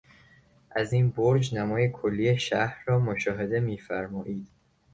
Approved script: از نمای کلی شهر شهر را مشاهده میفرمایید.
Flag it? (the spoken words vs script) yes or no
yes